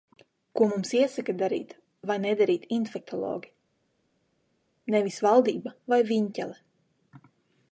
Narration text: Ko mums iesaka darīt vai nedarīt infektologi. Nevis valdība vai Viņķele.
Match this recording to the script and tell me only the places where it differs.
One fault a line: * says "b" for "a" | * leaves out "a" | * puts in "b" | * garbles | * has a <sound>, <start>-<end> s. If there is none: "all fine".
all fine